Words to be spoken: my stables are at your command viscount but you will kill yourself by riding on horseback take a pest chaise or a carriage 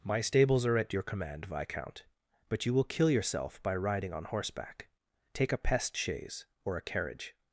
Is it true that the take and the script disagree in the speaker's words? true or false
false